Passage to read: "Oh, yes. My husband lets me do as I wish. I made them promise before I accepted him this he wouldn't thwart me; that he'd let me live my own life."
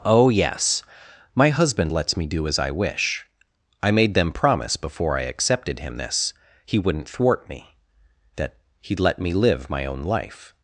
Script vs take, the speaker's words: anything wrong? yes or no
no